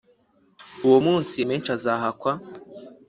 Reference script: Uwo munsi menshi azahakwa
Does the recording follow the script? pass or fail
pass